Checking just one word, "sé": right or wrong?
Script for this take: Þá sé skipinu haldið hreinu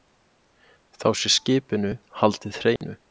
right